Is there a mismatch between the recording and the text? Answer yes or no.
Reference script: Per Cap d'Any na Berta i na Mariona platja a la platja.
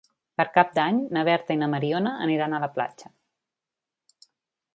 yes